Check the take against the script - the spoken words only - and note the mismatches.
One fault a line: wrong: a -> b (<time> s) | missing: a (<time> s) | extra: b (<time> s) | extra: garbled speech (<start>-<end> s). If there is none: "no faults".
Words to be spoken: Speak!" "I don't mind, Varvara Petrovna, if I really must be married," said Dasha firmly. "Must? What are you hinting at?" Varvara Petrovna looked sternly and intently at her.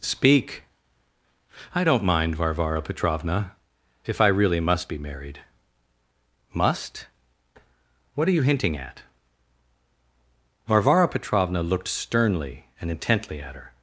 missing: said Dasha firmly (5.4 s)